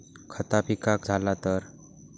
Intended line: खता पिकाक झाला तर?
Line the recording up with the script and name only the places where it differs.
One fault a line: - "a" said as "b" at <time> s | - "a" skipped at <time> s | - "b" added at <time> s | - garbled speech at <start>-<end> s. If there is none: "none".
none